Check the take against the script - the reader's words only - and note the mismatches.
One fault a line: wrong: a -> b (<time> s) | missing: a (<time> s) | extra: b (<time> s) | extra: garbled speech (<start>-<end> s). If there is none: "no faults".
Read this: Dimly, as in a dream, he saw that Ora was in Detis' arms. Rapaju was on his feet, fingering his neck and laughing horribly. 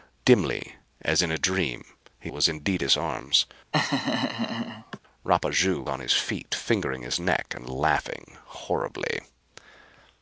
missing: saw that Ora (2.3 s)
missing: was (5.8 s)